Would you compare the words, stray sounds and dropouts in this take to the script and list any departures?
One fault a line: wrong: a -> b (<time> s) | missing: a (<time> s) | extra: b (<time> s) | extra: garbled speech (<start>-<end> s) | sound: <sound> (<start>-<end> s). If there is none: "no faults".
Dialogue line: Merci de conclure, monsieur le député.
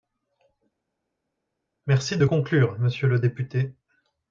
no faults